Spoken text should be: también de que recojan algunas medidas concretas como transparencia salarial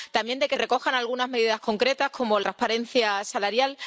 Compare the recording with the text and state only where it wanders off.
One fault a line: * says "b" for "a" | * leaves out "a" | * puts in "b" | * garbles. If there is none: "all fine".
all fine